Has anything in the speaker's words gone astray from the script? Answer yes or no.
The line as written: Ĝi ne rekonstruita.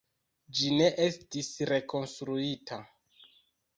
yes